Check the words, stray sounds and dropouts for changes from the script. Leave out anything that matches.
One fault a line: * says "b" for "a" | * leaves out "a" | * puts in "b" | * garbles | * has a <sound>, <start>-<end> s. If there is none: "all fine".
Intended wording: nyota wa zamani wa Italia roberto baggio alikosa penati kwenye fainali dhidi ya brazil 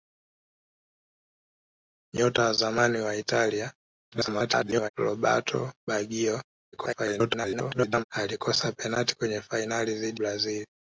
* garbles
* garbles
* leaves out "ya"